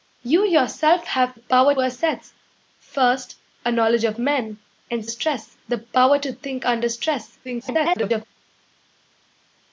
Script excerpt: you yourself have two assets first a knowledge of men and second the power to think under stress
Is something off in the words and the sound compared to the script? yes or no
yes